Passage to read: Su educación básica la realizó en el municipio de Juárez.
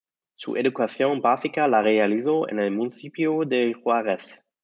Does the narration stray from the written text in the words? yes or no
no